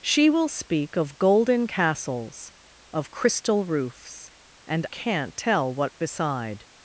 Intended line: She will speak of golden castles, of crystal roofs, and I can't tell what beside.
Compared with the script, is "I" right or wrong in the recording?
wrong